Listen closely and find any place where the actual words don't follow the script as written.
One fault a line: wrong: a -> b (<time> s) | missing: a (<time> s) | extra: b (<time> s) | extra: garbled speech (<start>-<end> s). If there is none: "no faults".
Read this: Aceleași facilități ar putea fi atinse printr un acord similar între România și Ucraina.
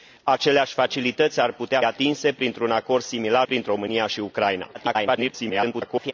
missing: fi (1.8 s)
wrong: între -> printr (3.4 s)
extra: garbled speech (4.7-6.1 s)